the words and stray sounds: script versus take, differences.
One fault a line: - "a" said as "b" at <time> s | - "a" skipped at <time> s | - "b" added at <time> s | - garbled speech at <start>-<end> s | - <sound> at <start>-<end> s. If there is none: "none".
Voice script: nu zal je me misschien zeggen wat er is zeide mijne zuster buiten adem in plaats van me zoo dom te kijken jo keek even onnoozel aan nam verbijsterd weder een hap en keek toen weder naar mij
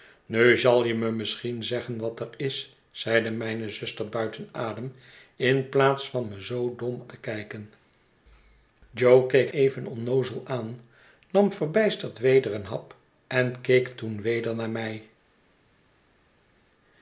none